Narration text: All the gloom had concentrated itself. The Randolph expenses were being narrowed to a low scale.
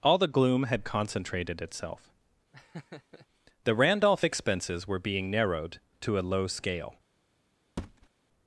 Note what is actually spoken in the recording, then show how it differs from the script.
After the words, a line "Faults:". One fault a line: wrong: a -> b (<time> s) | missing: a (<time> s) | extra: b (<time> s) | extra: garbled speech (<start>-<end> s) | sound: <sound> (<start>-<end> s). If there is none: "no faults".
All the gloom had concentrated itself. The Randolph expenses were being narrowed to a low scale.
Faults:
sound: laugh (2.5-3.3 s)
sound: thud (7.8-8.1 s)